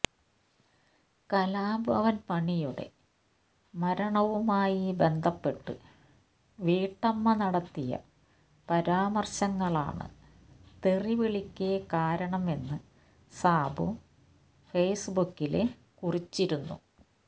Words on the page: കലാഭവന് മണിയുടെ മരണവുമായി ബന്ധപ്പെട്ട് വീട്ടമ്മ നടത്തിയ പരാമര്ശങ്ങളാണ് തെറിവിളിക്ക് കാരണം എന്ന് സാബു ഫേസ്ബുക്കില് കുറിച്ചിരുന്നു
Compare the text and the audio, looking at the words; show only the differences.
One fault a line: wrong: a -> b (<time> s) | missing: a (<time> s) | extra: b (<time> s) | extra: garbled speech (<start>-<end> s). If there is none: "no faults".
no faults